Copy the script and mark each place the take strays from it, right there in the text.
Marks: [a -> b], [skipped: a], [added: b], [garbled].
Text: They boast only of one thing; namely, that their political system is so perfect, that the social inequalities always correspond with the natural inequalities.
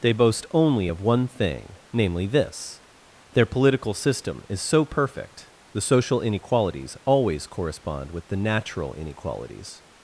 They boast only of one thing; namely, [that -> this] their political system is so perfect, [skipped: that] the social inequalities always correspond with the natural inequalities.